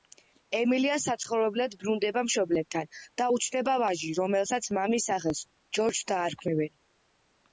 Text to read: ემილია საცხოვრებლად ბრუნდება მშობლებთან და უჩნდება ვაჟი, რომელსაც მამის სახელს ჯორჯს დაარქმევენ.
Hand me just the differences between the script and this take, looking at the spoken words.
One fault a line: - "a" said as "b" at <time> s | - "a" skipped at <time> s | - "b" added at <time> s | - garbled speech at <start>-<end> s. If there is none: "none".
none